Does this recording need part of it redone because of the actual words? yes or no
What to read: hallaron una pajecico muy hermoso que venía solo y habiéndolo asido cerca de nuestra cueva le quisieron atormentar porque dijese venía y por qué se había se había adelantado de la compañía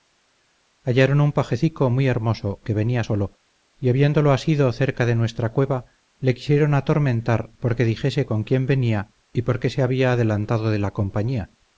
yes